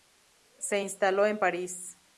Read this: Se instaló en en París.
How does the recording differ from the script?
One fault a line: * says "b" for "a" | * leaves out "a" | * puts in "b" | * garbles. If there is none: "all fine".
* leaves out "en"